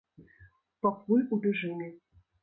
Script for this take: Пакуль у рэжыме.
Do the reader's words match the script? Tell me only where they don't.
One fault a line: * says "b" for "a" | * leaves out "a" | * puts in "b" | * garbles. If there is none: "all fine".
all fine